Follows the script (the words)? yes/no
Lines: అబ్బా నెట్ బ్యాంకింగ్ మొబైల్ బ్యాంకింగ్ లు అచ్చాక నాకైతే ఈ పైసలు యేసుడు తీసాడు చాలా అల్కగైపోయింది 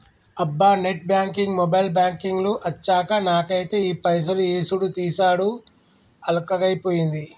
no